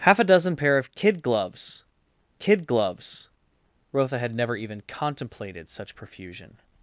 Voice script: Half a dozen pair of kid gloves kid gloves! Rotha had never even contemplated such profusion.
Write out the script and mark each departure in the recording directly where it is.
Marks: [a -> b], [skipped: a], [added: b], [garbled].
Half a dozen pair of kid gloves kid gloves! Rotha had never even contemplated such profusion.